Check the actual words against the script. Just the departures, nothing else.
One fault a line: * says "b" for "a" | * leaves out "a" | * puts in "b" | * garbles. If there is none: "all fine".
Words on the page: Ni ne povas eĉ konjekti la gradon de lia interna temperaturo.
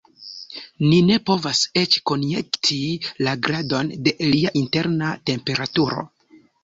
all fine